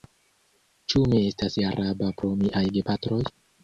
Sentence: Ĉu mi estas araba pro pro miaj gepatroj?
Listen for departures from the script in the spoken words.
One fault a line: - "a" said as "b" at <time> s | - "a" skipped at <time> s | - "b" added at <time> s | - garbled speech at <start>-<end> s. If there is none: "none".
- "pro" skipped at 2.4 s